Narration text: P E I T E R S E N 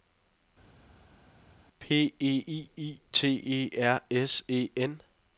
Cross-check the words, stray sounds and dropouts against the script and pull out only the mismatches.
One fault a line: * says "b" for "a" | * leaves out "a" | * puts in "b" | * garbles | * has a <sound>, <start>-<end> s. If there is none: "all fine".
* puts in "I"